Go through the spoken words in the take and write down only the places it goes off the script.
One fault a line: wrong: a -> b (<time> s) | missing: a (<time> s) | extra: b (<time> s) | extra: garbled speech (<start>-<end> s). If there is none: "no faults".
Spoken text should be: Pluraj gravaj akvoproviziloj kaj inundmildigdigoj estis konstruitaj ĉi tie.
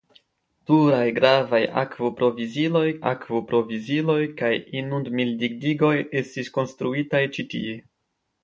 extra: akvoproviziloj (3.1 s)